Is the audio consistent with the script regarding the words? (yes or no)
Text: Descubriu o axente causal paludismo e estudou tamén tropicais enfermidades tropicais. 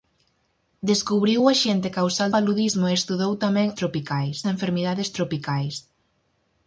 yes